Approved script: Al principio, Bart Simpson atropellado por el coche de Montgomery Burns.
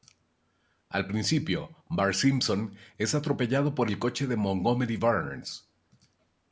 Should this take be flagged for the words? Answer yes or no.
yes